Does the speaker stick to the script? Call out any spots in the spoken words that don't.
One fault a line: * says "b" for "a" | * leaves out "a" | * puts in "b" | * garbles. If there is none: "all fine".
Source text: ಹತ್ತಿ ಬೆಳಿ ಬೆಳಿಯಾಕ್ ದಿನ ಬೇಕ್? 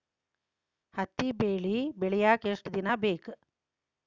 * puts in "ಎಷ್ಟ"